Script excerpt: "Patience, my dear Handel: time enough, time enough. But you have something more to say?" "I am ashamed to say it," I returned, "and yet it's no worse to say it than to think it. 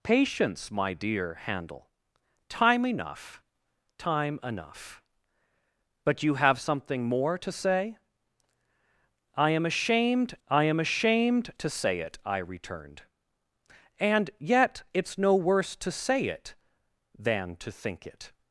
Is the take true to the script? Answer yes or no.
no